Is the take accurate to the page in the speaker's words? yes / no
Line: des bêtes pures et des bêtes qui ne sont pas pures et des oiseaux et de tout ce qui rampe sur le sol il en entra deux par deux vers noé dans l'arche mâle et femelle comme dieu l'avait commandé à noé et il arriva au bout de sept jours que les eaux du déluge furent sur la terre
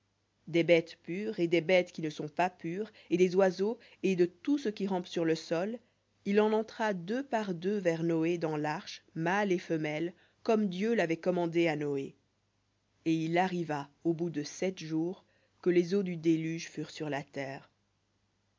yes